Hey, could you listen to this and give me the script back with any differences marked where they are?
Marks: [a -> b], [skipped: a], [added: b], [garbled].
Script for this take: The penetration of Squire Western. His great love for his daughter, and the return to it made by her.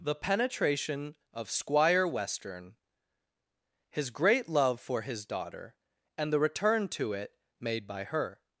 The penetration of Squire Western. His great love for his daughter, and the return to it made by her.